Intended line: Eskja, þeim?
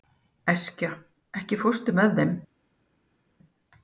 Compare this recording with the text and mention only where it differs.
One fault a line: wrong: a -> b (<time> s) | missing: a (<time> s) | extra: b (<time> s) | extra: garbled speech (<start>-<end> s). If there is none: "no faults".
extra: ekki fórstu með (1.4 s)